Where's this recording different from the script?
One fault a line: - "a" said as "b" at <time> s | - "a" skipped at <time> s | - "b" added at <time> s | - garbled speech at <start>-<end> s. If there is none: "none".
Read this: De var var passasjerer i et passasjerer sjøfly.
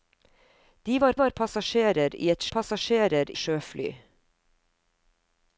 none